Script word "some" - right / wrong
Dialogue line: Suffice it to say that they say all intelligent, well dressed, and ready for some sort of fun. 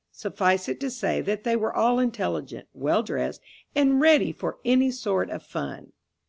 wrong